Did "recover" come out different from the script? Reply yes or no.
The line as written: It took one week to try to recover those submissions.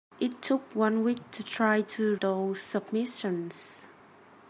yes